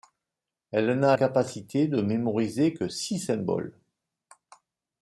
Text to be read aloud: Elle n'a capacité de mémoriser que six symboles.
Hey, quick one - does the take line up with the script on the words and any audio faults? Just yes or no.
yes